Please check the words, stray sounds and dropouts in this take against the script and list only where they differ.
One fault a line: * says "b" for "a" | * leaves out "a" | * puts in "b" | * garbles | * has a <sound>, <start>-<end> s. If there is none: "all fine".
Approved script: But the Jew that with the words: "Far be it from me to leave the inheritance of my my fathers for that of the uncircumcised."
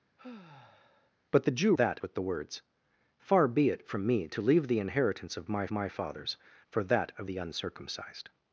* has a sigh, 0.2-1.1 s